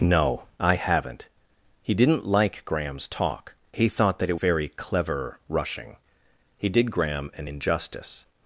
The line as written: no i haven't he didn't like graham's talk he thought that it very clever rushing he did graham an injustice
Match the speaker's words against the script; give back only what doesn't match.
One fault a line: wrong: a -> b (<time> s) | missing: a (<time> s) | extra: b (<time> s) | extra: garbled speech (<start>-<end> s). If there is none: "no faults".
no faults